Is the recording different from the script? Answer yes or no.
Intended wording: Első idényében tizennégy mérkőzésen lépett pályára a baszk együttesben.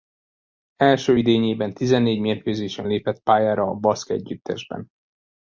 no